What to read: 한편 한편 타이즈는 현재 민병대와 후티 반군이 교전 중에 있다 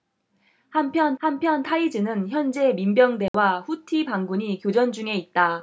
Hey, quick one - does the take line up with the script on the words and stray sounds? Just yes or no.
no